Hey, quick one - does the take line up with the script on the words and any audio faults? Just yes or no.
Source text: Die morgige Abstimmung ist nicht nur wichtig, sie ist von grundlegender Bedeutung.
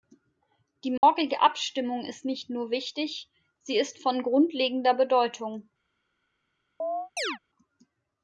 no